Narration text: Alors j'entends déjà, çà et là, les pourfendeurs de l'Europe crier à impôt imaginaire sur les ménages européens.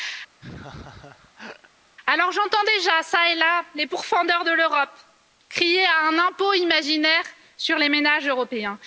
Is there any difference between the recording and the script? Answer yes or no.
yes